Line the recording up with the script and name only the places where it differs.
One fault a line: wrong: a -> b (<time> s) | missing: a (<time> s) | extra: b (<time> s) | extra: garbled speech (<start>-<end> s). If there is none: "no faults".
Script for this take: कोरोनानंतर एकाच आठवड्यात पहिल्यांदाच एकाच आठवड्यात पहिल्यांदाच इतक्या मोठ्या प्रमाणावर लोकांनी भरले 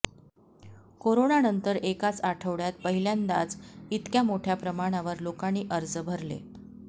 missing: एकाच आठवड्यात पहिल्यांदाच (3.5 s)
extra: अर्ज (5.7 s)